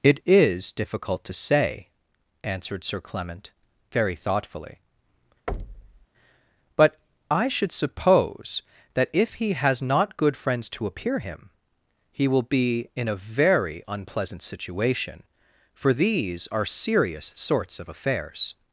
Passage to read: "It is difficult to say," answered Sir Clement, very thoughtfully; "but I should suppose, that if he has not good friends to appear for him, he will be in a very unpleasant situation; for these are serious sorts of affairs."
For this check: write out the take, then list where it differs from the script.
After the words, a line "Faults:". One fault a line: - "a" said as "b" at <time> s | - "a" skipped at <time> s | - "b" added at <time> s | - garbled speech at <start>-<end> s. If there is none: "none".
"It is difficult to say," answered Sir Clement, very thoughtfully; "but I should suppose, that if he has not good friends to appear him, he will be in a very unpleasant situation; for these are serious sorts of affairs."
Faults:
- "for" skipped at 11.2 s